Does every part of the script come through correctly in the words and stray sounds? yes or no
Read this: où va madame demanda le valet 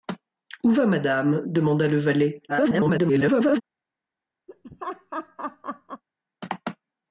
no